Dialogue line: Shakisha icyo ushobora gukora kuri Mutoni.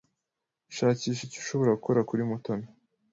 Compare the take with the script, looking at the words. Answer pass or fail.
pass